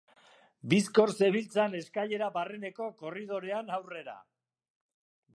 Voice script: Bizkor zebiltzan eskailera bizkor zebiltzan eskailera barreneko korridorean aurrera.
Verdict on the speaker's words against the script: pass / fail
fail